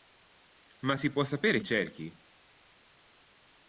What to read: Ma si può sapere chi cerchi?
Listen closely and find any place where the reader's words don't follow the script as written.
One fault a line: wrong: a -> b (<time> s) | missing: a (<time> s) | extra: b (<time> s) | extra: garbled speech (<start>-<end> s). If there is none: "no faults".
missing: chi (1.6 s)